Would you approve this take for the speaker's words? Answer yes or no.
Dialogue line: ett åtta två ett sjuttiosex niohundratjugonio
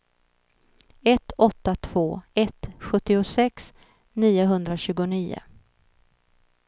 yes